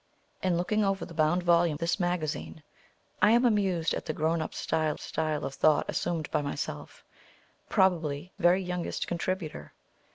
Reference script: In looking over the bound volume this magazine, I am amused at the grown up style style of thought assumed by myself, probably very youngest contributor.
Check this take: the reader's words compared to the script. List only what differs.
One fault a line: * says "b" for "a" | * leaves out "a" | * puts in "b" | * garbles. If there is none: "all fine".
all fine